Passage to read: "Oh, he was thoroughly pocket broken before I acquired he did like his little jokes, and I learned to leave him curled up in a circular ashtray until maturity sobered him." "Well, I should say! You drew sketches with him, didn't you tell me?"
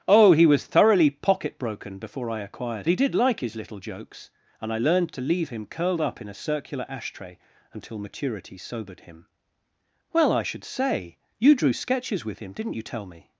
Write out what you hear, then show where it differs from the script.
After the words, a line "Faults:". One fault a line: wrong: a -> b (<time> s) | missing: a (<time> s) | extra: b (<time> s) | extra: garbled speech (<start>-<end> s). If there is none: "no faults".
"Oh, he was thoroughly pocket broken before I acquired he did like his little jokes, and I learned to leave him curled up in a circular ashtray until maturity sobered him." "Well, I should say! You drew sketches with him, didn't you tell me?"
Faults:
no faults